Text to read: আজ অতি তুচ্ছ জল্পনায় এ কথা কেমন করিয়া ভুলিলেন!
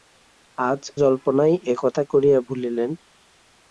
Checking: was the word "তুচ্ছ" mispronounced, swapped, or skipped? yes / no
yes